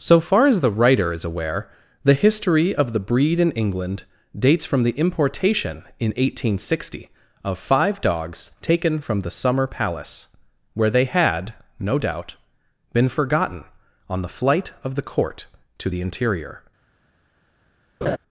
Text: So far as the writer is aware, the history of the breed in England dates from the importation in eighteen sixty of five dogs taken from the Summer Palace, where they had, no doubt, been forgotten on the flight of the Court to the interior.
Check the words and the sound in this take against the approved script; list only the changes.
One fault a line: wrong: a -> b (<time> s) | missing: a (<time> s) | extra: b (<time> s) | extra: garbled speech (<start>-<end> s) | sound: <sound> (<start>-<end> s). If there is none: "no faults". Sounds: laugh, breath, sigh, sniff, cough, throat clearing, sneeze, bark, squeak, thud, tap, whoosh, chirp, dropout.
sound: laugh (18.0-18.2 s)